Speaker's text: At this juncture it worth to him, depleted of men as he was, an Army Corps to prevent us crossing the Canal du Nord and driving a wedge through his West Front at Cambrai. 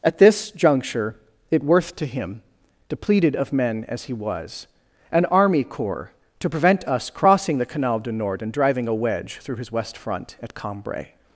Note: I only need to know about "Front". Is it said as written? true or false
true